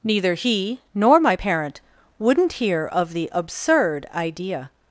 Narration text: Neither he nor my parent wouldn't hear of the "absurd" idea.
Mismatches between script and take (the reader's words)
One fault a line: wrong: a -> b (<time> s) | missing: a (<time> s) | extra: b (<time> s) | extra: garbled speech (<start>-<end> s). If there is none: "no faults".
no faults